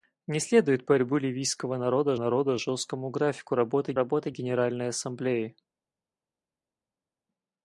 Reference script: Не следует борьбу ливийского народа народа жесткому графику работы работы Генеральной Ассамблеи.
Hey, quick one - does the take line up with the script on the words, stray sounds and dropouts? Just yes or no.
yes